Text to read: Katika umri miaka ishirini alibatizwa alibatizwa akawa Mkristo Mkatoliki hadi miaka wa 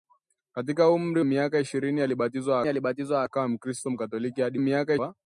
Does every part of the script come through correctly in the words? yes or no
yes